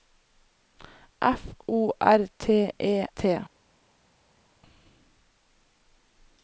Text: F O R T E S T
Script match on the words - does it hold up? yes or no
no